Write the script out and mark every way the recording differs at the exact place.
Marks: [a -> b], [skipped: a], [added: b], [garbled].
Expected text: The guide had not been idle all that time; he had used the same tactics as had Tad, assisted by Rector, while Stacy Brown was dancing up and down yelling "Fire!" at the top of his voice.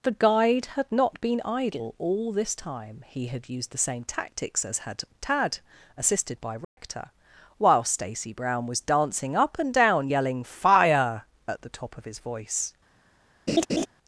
The guide had not been idle all [that -> this] time; he had used the same tactics as had Tad, assisted by Rector, while Stacy Brown was dancing up and down yelling "Fire!" at the top of his voice.